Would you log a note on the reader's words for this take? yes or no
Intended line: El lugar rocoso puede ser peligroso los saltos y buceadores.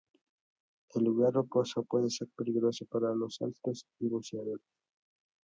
yes